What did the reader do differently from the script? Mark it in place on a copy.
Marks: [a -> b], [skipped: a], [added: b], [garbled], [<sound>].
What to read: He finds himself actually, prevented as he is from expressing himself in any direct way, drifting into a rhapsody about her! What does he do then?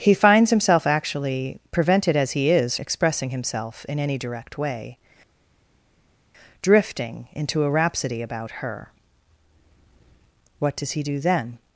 He finds himself actually, prevented as he is [skipped: from] expressing himself in any direct way, drifting into a rhapsody about her! What does he do then?